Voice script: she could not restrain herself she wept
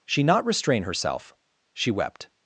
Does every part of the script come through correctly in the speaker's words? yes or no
no